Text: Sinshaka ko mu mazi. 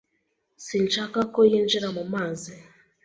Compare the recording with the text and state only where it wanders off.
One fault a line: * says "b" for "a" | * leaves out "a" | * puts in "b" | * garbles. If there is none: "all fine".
* puts in "yinjira"